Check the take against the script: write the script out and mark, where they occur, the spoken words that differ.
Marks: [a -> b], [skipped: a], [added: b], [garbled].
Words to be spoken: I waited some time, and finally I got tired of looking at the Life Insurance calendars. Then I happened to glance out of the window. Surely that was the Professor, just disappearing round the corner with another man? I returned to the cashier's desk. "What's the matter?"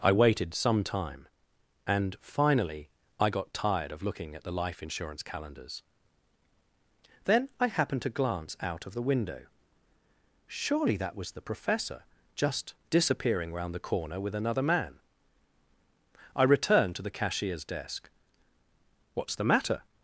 I waited some time, and finally I got tired of looking at the Life Insurance calendars. Then I happened to glance out of the window. Surely that was the Professor, just disappearing round the corner with another man? I returned to the cashier's desk. "What's the matter?"